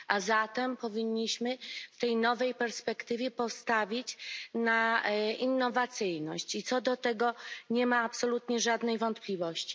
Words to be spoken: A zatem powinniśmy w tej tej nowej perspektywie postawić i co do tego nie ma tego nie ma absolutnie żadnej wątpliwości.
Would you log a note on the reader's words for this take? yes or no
yes